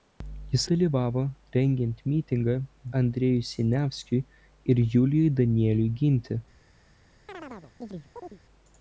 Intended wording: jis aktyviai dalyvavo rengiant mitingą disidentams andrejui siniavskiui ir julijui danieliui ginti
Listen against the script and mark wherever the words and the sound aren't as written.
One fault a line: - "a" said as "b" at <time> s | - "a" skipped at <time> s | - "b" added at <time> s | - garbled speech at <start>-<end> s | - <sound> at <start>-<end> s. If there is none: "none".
- "aktyviai" skipped at 0.6 s
- "disidentams" skipped at 2.6 s
- chirp at 7.3-8.4 s